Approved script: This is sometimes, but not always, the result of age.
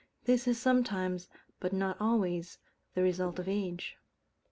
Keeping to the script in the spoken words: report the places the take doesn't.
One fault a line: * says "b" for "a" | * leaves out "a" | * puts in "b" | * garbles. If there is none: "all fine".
all fine